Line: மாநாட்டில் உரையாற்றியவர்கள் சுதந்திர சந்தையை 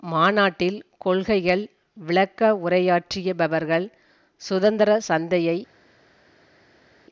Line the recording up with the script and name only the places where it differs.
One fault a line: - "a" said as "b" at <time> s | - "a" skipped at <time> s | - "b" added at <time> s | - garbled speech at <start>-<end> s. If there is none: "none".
- "கொள்கைகள் விளக்க" added at 1.0 s